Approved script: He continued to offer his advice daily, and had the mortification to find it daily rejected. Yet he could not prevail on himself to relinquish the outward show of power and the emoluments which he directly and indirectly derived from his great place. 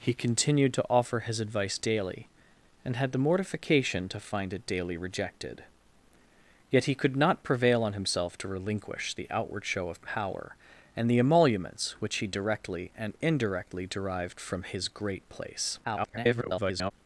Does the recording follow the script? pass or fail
fail